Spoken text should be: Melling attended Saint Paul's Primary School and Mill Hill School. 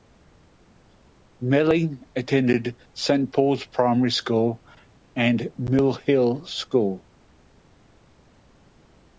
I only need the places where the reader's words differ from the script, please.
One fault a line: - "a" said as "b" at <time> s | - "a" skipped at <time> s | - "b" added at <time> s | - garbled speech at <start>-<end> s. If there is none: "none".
none